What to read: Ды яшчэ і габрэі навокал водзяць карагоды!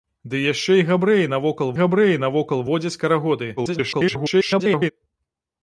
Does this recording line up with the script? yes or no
no